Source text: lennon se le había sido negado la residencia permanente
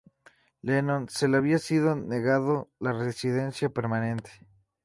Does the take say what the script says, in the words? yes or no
yes